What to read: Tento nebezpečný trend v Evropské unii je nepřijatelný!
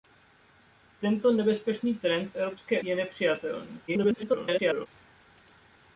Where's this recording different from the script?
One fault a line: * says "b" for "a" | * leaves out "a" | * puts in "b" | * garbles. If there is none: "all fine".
* leaves out "unii"
* garbles